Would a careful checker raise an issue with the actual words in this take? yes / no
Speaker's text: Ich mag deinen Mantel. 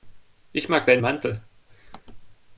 no